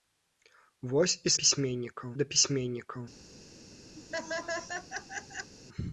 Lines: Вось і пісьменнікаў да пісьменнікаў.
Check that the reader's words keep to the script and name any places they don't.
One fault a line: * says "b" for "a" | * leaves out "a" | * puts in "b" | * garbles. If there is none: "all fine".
all fine